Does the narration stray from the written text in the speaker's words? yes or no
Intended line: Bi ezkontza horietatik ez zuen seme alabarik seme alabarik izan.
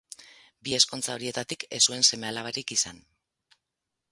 yes